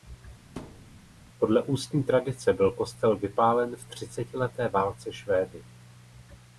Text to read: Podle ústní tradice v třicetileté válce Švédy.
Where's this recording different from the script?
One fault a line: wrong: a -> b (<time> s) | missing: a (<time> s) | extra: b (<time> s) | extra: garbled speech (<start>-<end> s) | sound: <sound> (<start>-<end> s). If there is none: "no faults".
sound: thud (0.6-1.0 s)
extra: byl kostel vypálen (2.5 s)